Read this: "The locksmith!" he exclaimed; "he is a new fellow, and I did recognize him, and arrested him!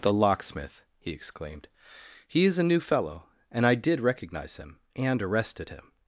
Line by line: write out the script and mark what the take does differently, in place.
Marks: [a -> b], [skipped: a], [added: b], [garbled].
"The locksmith!" he exclaimed; "he is a new fellow, and I did recognize him, and arrested him!